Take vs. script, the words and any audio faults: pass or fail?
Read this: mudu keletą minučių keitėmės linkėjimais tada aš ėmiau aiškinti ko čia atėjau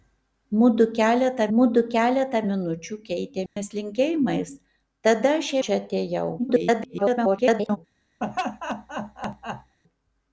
fail